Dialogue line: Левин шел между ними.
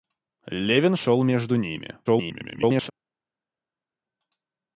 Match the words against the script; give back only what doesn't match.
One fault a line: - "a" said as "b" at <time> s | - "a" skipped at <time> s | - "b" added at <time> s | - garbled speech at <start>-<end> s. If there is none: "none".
- garbled speech at 2.1-2.9 s